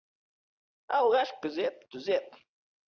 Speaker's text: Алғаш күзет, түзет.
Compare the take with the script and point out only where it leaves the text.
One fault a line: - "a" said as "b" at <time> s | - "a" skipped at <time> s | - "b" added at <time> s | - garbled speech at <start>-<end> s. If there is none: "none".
none